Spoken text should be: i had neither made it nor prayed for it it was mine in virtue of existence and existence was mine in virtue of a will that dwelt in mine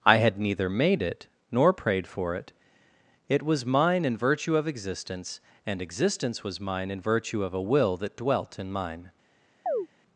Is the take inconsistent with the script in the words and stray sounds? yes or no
yes